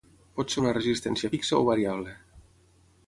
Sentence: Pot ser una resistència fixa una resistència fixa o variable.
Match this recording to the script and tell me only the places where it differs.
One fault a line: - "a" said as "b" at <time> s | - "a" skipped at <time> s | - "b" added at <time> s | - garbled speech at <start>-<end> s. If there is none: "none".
- "una resistència fixa" skipped at 1.6 s